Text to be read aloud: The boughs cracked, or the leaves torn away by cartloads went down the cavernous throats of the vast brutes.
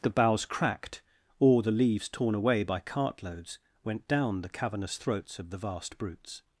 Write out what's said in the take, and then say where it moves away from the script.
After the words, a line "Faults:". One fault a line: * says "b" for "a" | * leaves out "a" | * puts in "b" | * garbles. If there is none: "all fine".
The boughs cracked, or the leaves torn away by cartloads went down the cavernous throats of the vast brutes.
Faults:
all fine